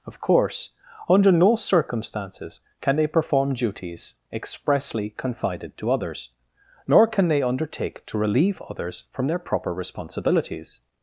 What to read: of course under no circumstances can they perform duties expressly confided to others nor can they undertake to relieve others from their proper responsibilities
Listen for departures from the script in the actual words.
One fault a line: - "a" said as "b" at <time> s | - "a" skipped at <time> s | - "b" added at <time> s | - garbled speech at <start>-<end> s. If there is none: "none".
none